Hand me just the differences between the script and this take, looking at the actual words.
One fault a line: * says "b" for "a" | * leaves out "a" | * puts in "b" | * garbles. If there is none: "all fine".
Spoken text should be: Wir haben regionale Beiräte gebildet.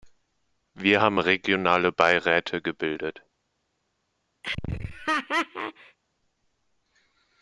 all fine